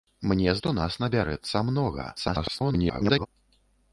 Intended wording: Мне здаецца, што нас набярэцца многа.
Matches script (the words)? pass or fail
fail